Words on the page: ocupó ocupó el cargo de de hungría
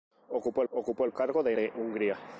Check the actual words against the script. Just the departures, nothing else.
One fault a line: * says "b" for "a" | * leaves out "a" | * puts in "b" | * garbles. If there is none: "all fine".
all fine